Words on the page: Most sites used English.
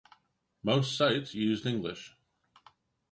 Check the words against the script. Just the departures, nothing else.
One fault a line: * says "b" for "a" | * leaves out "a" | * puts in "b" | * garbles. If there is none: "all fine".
all fine